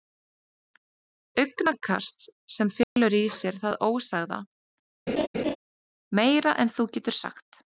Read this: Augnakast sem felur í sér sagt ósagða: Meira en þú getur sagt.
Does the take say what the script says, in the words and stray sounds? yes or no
no